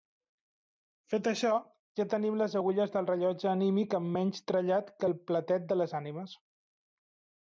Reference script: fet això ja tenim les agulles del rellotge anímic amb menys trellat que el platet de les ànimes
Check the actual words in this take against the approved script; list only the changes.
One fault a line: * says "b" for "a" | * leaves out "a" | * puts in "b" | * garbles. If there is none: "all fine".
all fine